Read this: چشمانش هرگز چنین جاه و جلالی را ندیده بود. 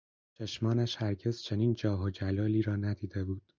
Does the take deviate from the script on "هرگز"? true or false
false